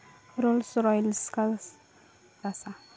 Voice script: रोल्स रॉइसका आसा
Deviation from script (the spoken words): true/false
false